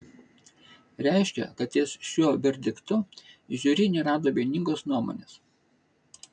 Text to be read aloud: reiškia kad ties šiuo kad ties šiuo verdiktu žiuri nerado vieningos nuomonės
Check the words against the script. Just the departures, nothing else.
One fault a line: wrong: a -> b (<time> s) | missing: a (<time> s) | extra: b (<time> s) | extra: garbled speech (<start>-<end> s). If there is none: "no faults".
missing: kad ties šiuo (2.3 s)